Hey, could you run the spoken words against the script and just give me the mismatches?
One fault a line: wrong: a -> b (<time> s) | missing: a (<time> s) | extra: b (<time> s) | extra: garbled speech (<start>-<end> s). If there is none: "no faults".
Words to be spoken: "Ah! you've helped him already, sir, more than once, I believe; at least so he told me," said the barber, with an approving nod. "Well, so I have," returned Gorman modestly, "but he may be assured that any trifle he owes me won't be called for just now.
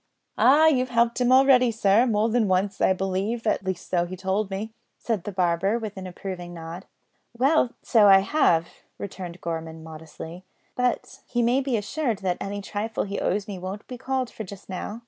no faults